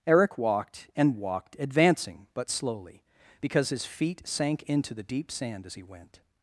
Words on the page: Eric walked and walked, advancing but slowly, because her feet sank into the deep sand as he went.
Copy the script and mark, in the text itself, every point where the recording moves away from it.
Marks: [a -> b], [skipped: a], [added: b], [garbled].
Eric walked and walked, advancing but slowly, because [her -> his] feet sank into the deep sand as he went.